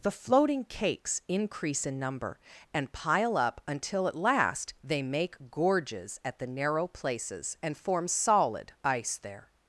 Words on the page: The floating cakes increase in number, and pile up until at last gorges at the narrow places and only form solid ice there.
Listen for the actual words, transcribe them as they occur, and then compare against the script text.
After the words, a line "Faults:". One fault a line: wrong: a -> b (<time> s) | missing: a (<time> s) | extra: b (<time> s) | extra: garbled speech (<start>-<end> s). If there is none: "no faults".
The floating cakes increase in number, and pile up until at last they make gorges at the narrow places and form solid ice there.
Faults:
extra: they make (4.8 s)
missing: only (7.8 s)